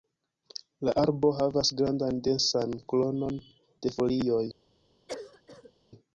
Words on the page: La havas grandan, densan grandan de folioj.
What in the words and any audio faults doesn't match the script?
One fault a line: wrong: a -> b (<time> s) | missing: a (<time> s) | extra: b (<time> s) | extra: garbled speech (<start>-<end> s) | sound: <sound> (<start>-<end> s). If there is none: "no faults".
extra: arbo (1.0 s)
wrong: grandan -> kronon (2.9 s)
sound: cough (5.1-5.7 s)